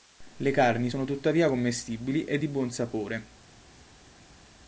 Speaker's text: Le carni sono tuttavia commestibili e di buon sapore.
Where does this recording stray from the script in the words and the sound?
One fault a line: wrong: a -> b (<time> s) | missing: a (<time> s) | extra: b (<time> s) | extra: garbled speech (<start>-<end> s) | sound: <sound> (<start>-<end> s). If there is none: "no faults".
no faults